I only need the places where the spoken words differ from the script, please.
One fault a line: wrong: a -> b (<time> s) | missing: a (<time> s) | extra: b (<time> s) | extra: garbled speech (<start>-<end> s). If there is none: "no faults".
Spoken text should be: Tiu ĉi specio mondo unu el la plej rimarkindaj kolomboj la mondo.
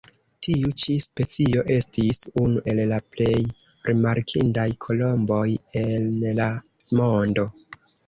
wrong: mondo -> estis (1.8 s)
extra: en (5.8 s)